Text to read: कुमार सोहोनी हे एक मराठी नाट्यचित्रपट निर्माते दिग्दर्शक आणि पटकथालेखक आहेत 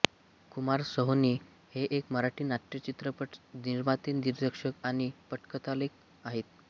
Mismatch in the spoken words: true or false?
false